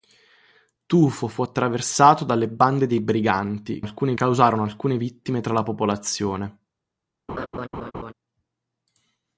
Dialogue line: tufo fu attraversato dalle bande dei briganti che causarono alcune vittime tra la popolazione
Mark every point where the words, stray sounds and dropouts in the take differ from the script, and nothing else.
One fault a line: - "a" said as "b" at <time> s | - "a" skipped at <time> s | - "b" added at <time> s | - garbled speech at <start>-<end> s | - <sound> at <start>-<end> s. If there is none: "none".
- "che" said as "alcune" at 3.8 s
- laugh at 7.3-8.1 s